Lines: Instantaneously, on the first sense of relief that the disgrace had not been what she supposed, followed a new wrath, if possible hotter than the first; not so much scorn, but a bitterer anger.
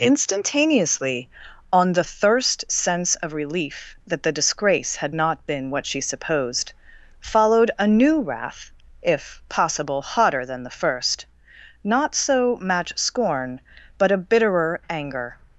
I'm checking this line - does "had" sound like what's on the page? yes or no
yes